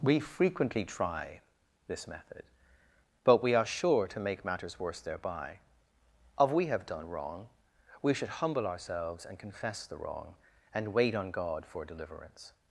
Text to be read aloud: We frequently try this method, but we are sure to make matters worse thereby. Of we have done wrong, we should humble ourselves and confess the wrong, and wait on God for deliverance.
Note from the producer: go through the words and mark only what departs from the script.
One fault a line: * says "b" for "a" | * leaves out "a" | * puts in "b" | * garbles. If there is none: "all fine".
all fine